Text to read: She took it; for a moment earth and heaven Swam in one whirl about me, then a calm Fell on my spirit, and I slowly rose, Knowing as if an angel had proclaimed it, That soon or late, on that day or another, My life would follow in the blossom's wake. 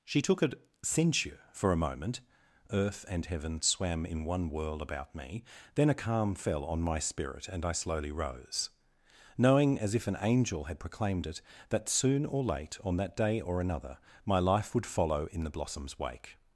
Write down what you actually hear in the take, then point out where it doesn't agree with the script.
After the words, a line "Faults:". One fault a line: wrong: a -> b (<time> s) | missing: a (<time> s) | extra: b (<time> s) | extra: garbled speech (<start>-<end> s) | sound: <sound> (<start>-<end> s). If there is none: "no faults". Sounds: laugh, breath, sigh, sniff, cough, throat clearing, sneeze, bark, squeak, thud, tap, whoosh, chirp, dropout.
She took a censure; for a moment earth and heaven Swam in one whirl about me, then a calm Fell on my spirit, and I slowly rose, Knowing as if an angel had proclaimed it, That soon or late, on that day or another, My life would follow in the blossom's wake.
Faults:
wrong: it -> a censure (0.4 s)